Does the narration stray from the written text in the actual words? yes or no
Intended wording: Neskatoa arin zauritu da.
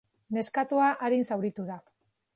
no